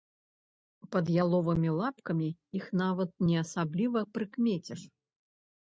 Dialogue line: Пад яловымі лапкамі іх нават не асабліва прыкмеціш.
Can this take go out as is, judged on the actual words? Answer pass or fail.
pass